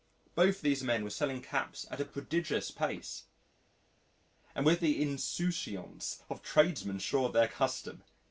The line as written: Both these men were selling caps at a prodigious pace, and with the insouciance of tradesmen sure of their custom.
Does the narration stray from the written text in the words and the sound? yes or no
no